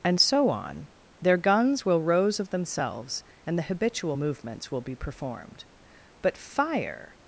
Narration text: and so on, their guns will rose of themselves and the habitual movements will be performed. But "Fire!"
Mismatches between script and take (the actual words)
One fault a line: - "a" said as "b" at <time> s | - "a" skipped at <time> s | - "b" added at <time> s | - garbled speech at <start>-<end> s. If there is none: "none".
none